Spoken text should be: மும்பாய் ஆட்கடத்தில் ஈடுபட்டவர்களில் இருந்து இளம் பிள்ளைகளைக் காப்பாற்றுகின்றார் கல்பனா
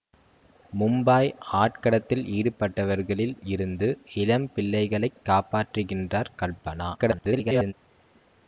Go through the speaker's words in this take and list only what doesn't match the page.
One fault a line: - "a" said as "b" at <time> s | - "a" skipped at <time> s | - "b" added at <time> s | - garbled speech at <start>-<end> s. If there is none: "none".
- garbled speech at 7.0-7.7 s